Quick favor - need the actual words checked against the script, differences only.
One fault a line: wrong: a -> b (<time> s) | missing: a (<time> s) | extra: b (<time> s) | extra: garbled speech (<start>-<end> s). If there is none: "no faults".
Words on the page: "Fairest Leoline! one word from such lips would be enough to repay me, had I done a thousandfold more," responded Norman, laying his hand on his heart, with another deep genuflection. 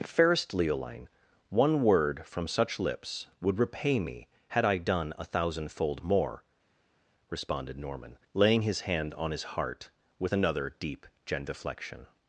missing: be enough to (3.6 s)